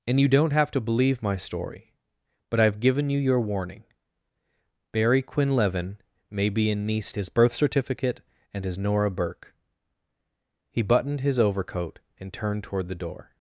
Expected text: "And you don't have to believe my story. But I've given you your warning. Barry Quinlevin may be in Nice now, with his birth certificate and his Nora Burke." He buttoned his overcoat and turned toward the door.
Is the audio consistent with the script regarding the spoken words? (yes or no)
no